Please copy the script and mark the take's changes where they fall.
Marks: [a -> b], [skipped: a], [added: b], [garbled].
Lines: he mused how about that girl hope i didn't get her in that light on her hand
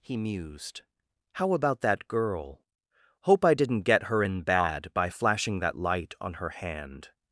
he mused how about that girl hope i didn't get her in [added: bad by flashing] that light on her hand